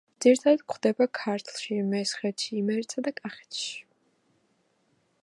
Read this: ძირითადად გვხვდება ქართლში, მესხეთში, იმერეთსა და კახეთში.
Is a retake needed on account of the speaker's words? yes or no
no